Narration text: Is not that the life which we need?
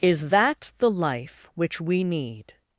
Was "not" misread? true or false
true